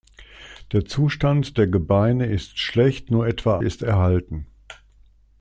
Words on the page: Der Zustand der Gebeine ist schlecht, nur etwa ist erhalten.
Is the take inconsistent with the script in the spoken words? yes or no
no